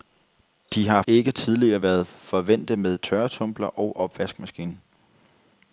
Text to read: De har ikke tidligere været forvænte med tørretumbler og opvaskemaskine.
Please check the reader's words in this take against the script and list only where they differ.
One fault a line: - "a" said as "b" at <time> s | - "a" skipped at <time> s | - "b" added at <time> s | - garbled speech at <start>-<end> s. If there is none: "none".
none